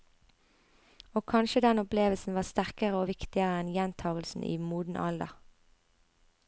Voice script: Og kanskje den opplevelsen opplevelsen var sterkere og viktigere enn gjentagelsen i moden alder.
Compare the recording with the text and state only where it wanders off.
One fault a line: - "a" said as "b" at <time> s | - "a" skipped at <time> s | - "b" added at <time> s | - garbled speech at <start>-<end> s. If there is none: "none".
- "opplevelsen" skipped at 2.4 s